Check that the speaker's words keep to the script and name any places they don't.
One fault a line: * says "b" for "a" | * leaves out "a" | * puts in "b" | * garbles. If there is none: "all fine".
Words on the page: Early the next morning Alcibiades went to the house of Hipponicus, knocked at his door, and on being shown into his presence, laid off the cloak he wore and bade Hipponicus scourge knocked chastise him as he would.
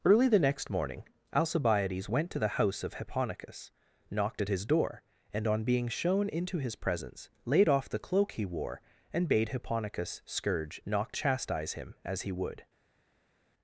all fine